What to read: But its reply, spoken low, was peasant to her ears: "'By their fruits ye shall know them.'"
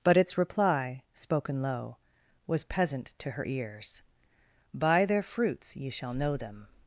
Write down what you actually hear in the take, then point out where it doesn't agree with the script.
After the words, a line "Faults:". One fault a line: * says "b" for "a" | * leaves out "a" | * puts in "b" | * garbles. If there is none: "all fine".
But its reply, spoken low, was peasant to her ears: "'By their fruits ye shall know them.'"
Faults:
all fine